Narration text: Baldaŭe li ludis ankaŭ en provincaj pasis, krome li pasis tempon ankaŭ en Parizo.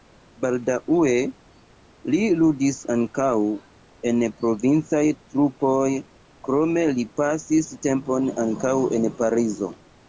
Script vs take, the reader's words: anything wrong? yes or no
yes